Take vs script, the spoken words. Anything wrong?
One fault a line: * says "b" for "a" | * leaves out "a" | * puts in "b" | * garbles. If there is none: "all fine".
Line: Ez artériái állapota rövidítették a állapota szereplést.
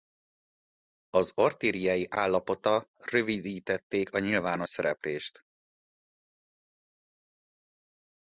* says "Az" for "Ez"
* says "nyilvános" for "állapota"